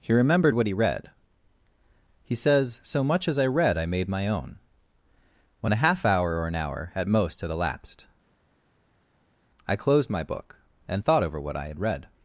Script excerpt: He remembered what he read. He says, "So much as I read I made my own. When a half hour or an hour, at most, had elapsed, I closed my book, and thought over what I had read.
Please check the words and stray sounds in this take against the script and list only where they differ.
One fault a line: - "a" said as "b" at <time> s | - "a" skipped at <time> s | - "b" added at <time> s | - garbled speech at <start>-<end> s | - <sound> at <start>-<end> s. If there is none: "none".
none